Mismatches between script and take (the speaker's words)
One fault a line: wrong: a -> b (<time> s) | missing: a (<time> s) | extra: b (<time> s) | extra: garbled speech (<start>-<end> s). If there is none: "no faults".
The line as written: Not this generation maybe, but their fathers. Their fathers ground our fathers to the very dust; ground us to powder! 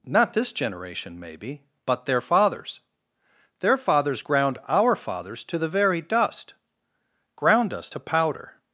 no faults